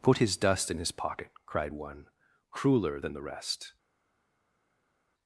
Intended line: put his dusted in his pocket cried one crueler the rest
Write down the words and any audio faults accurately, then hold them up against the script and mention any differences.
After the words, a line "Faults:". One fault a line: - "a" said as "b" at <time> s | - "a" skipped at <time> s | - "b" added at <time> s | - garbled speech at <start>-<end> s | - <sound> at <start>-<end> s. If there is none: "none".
put his dust in his pocket cried one crueler than the rest
Faults:
- "dusted" said as "dust" at 0.4 s
- "than" added at 3.0 s